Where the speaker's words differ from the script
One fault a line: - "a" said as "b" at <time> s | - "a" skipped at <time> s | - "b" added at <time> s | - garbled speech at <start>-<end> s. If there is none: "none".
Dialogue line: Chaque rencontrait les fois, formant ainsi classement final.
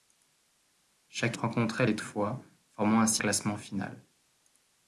none